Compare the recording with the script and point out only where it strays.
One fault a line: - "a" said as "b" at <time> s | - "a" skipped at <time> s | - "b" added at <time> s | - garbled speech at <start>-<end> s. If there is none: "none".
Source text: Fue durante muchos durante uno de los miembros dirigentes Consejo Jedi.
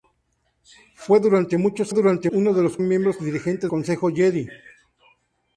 none